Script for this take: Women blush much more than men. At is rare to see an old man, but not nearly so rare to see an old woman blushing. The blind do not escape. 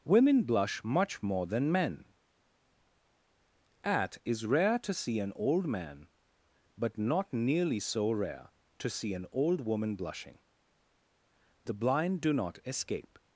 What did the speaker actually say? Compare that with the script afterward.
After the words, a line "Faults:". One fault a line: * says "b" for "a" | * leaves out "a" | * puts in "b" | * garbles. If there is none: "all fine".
Women blush much more than men. At is rare to see an old man, but not nearly so rare to see an old woman blushing. The blind do not escape.
Faults:
all fine